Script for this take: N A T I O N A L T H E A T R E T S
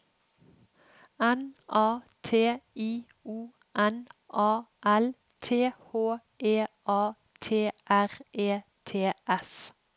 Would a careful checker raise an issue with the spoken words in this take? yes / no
no